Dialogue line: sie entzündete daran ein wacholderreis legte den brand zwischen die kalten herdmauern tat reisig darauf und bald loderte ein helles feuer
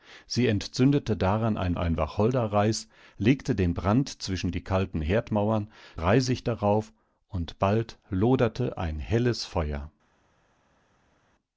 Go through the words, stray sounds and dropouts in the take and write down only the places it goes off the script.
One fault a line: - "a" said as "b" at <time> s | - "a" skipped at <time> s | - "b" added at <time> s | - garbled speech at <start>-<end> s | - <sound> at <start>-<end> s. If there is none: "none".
- "ein" added at 1.8 s
- "tat" skipped at 5.7 s